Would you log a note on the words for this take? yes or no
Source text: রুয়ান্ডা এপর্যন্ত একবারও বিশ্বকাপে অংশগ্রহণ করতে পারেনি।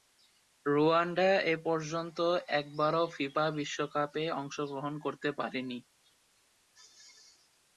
yes